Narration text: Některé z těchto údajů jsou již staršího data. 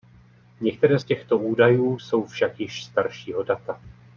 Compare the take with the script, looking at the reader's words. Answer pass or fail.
fail